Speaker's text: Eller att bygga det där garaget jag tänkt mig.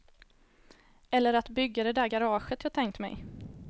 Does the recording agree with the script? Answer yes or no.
yes